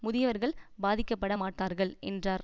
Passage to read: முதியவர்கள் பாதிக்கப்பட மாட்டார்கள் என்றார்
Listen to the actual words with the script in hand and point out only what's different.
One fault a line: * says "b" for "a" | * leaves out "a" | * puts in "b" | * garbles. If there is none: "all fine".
all fine